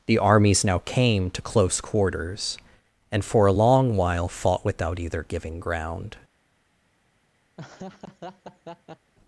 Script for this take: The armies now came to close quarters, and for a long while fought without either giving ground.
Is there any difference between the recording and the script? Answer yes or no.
no